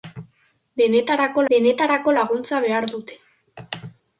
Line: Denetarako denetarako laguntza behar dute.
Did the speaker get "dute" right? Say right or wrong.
right